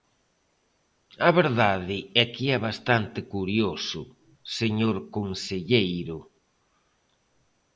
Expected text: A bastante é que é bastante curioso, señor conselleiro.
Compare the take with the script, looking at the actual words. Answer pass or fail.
fail